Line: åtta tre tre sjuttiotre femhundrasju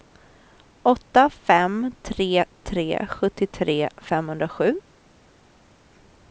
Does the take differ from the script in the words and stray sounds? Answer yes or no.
yes